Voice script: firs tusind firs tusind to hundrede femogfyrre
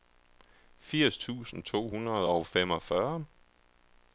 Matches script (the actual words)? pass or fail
fail